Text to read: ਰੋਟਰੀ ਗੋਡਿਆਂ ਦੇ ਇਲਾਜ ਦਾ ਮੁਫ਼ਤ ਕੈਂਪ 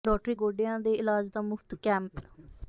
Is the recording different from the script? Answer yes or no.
no